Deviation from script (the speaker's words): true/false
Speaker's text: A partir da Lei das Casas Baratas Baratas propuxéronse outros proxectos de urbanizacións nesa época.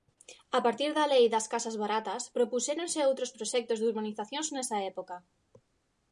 true